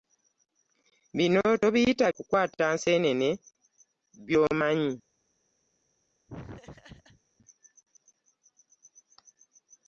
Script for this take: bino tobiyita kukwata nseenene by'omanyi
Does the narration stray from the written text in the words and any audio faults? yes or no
yes